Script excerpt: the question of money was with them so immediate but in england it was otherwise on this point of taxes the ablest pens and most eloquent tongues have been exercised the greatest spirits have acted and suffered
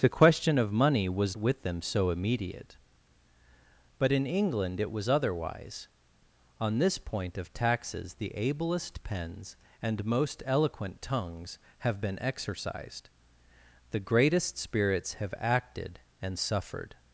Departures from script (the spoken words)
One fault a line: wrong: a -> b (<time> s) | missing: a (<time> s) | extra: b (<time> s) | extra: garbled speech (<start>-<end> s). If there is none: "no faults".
no faults